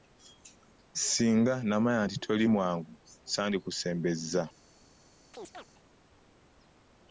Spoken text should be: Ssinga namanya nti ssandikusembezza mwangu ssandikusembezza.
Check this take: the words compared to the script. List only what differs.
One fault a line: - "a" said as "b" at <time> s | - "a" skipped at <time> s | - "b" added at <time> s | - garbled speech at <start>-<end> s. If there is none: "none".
- "ssandikusembezza" said as "toli" at 2.2 s